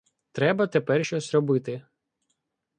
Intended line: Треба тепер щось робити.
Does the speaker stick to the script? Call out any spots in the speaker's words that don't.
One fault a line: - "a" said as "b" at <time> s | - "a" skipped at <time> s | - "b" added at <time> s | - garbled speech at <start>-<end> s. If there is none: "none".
none